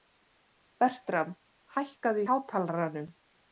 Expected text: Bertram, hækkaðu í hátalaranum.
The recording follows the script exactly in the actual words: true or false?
true